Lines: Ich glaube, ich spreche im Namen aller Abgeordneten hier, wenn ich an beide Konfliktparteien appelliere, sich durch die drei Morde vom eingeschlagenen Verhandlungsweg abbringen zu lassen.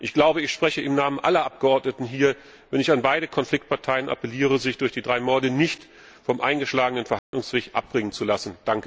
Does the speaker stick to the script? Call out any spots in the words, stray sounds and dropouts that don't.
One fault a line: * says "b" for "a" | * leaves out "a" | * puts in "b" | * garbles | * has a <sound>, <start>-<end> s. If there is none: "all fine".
* puts in "nicht"
* has a dropout, 7.2-7.3 s